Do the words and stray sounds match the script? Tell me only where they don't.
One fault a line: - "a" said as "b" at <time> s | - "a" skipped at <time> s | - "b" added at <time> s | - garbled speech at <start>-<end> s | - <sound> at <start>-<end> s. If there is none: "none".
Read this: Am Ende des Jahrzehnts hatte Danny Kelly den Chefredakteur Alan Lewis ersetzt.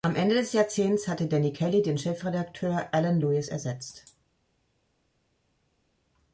none